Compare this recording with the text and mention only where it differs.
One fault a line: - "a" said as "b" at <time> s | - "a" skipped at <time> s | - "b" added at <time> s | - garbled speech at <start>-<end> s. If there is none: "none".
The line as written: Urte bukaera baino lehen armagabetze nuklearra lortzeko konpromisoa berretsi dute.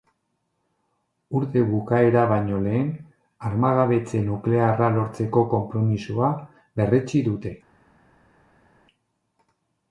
none